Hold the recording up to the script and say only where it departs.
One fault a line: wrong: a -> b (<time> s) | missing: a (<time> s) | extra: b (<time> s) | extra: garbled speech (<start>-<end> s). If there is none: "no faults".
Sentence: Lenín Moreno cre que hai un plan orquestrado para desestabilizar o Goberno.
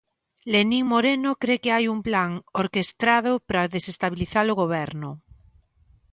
no faults